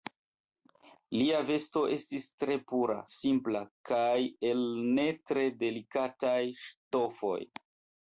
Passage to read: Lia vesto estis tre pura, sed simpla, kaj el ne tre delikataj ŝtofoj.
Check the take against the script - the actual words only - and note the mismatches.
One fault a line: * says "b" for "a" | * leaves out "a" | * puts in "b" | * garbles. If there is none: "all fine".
* leaves out "sed"